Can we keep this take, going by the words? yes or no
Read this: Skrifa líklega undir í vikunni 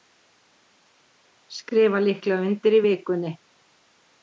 yes